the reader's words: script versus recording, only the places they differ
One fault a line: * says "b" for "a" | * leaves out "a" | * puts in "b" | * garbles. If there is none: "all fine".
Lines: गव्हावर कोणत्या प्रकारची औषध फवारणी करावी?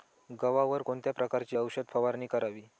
all fine